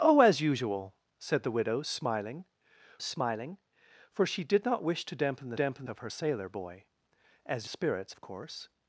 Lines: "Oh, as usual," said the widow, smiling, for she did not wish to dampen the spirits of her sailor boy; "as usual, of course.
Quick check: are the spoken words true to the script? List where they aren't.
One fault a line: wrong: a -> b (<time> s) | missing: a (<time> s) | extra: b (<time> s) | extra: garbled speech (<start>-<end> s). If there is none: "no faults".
extra: smiling (3.0 s)
wrong: spirits -> dampen (5.5 s)
wrong: usual -> spirits (7.7 s)